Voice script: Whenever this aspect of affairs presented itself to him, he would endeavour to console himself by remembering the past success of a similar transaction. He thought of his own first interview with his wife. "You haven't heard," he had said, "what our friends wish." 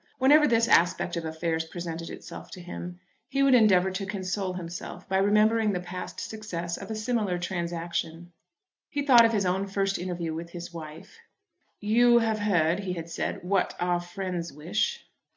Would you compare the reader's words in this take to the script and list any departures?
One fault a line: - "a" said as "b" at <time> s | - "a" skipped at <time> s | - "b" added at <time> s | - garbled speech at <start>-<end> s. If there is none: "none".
- "haven't" said as "have" at 12.2 s